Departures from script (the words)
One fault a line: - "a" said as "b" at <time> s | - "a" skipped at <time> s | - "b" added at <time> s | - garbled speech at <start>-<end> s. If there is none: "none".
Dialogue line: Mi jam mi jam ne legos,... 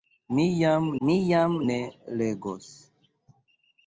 none